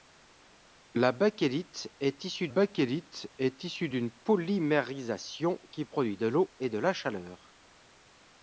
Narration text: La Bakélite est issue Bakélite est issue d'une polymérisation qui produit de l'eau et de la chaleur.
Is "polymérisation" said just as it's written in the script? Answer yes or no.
yes